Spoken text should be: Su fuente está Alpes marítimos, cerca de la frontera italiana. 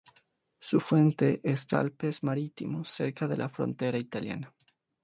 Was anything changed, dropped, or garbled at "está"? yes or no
no